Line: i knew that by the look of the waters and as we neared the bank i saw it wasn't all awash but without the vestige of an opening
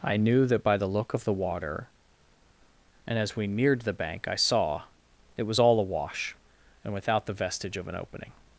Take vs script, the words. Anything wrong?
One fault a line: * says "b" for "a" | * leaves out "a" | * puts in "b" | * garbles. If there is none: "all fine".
* says "water" for "waters"
* says "was" for "wasn't"
* says "and" for "but"